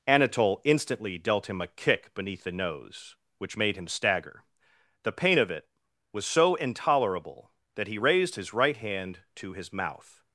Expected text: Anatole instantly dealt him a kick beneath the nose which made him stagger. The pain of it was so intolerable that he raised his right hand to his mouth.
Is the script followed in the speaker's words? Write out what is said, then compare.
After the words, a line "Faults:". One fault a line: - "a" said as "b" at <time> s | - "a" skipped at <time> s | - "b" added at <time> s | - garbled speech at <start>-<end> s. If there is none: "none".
Anatole instantly dealt him a kick beneath the nose which made him stagger. The pain of it was so intolerable that he raised his right hand to his mouth.
Faults:
none